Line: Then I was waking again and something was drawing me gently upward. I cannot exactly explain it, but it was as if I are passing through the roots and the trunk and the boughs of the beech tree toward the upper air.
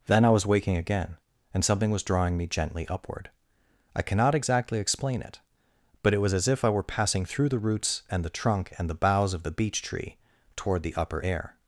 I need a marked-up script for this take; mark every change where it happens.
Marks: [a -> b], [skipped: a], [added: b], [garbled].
Then I was waking again and something was drawing me gently upward. I cannot exactly explain it, but it was as if I [are -> were] passing through the roots and the trunk and the boughs of the beech tree toward the upper air.